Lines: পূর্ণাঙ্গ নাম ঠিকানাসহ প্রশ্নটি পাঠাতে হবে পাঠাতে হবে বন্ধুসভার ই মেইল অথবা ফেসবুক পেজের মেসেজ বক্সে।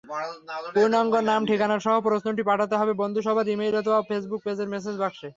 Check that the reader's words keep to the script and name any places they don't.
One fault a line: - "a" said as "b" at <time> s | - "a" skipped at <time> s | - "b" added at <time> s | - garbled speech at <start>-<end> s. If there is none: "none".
- "পাঠাতে হবে" skipped at 2.9 s